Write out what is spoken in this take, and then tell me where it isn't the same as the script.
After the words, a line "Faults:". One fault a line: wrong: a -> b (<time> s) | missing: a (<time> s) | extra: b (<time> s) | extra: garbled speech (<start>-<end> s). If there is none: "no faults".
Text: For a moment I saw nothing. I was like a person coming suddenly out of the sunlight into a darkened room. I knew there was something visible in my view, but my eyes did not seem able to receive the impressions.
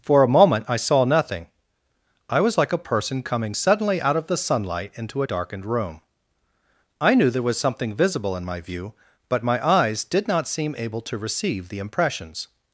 For a moment I saw nothing. I was like a person coming suddenly out of the sunlight into a darkened room. I knew there was something visible in my view, but my eyes did not seem able to receive the impressions.
Faults:
no faults